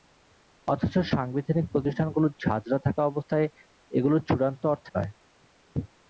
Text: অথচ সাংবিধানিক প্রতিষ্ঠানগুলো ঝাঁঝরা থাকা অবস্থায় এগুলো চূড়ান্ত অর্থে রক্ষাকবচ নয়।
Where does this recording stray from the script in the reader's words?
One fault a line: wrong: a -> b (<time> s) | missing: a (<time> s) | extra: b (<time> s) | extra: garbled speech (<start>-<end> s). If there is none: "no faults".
missing: রক্ষাকবচ (4.9 s)